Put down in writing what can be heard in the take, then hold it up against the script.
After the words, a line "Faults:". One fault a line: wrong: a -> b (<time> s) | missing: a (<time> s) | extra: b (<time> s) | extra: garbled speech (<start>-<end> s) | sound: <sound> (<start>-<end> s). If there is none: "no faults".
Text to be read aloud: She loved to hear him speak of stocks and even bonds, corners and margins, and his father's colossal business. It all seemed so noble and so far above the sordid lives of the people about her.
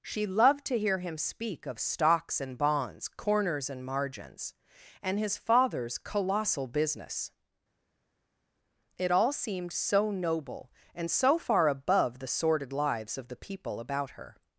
She loved to hear him speak of stocks and bonds, corners and margins, and his father's colossal business. It all seemed so noble and so far above the sordid lives of the people about her.
Faults:
missing: even (2.6 s)